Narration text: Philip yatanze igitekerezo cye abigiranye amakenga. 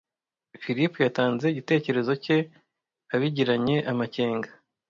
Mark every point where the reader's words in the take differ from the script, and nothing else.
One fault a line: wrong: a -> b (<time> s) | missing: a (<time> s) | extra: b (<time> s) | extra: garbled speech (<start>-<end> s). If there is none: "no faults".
no faults